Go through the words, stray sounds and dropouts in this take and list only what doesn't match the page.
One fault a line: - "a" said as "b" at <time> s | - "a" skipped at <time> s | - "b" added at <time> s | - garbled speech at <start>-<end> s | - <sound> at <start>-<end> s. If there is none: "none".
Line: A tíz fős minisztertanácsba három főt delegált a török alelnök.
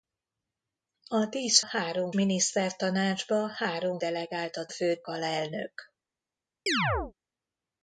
- "fős" said as "három" at 1.6 s
- "főt" skipped at 4.0 s
- "török" said as "főt" at 4.7 s
- chirp at 6.7-7.1 s